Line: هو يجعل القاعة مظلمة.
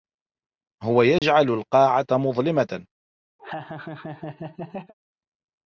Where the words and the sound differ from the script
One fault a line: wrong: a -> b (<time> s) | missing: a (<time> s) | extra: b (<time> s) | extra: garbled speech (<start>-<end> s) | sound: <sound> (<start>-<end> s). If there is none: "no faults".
sound: dropout (1.2-1.2 s)
sound: laugh (3.4-4.9 s)